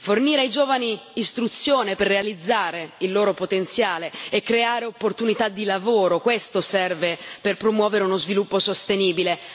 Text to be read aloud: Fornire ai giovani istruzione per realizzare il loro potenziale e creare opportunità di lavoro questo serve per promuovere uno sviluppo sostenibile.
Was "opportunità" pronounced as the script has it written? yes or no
yes